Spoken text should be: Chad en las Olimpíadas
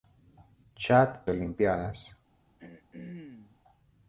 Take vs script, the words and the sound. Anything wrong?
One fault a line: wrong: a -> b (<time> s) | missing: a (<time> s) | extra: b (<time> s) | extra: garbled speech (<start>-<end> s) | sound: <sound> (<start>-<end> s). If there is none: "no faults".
missing: en las (1.3 s)
sound: throat clearing (2.6-3.6 s)